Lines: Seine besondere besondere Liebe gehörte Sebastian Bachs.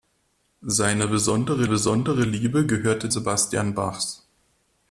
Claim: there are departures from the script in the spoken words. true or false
false